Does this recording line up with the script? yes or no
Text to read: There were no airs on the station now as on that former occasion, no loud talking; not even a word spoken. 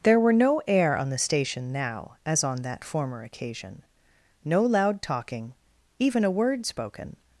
no